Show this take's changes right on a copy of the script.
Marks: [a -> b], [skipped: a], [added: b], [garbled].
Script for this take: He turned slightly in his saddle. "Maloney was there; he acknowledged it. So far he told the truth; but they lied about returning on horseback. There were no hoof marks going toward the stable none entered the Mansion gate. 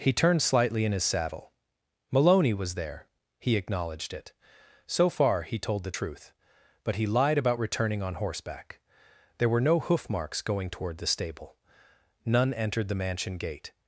He turned slightly in his saddle. "Maloney was there; he acknowledged it. So far he told the truth; but [they -> he] lied about returning on horseback. There were no hoof marks going toward the stable none entered the Mansion gate.